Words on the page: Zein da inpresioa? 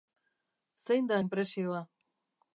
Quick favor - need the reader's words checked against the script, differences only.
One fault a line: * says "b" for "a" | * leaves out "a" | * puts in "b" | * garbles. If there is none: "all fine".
all fine